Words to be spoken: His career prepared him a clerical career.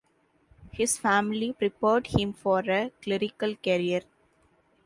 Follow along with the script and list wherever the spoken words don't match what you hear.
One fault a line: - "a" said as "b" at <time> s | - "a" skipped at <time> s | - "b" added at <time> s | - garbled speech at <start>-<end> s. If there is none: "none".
- "career" said as "family" at 1.0 s
- "for" added at 2.3 s